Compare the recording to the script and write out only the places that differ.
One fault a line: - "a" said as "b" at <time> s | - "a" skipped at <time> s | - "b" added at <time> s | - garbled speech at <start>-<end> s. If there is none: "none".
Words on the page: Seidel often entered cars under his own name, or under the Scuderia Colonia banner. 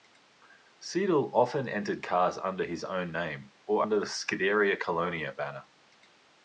none